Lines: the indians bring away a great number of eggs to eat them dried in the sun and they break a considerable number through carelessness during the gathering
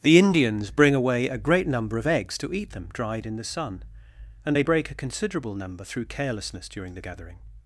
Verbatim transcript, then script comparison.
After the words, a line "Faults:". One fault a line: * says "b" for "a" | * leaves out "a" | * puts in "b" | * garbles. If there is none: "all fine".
the indians bring away a great number of eggs to eat them dried in the sun and they break a considerable number through carelessness during the gathering
Faults:
all fine